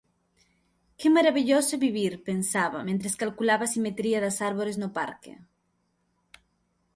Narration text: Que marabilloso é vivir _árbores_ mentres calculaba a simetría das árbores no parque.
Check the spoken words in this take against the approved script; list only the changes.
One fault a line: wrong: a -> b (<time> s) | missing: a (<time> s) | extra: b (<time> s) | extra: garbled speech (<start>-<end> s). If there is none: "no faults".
wrong: árbores -> pensaba (2.3 s)